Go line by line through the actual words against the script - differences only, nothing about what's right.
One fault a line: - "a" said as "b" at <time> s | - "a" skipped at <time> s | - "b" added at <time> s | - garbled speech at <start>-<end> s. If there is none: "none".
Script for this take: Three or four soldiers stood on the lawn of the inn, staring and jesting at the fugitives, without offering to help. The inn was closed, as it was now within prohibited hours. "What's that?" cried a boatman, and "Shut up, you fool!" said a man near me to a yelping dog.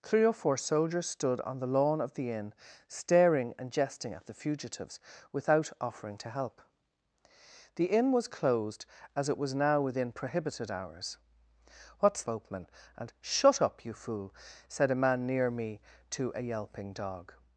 - "that cried a" skipped at 12.2 s